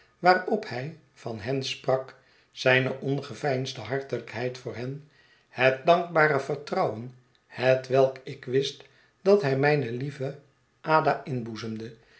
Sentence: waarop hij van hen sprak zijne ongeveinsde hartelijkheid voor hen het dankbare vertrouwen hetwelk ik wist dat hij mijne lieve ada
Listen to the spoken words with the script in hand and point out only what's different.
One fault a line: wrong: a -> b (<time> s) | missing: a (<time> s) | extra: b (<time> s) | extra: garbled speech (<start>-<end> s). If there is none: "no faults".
no faults